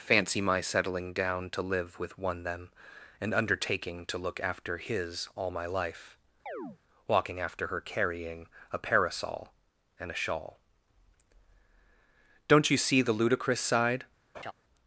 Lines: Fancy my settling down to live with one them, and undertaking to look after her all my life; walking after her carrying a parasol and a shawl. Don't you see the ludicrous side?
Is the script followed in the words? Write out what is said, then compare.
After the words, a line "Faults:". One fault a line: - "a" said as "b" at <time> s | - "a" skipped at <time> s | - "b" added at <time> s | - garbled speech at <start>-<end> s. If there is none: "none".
Fancy my settling down to live with one them, and undertaking to look after his all my life; walking after her carrying a parasol and a shawl. Don't you see the ludicrous side?
Faults:
- "her" said as "his" at 4.8 s